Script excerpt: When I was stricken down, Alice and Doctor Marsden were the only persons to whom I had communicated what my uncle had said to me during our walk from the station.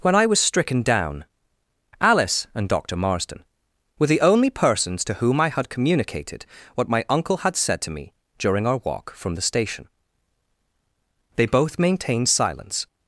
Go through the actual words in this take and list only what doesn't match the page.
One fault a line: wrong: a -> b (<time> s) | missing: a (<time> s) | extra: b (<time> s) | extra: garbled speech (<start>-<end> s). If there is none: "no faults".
extra: They both maintained silence (11.3 s)